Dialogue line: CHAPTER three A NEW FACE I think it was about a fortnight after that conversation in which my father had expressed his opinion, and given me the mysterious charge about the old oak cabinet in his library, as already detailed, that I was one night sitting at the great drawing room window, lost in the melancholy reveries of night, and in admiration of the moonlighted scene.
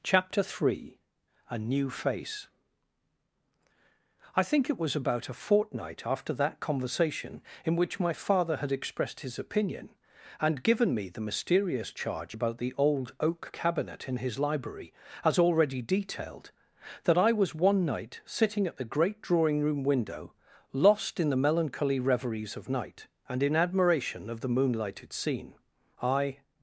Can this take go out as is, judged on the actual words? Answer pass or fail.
fail